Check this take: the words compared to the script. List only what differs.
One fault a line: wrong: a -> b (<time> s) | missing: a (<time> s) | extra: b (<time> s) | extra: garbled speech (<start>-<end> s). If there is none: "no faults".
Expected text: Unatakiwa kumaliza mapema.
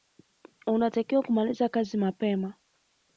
extra: kazi (1.7 s)